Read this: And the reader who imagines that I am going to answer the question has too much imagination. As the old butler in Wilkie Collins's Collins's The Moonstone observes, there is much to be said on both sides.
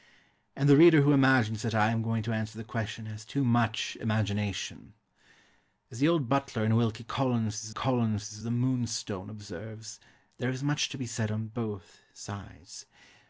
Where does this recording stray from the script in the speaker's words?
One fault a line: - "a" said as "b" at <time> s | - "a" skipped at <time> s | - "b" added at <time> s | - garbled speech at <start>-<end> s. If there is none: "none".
none